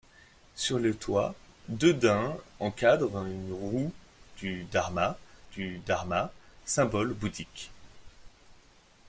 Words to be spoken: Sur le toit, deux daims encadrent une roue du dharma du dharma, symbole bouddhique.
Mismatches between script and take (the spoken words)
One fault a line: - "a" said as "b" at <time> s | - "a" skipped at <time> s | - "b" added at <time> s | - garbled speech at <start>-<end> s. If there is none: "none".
none